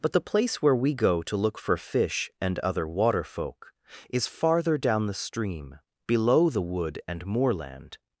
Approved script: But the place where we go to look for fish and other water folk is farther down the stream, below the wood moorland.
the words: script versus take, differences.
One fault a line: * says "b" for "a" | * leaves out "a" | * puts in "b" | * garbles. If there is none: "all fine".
* puts in "and"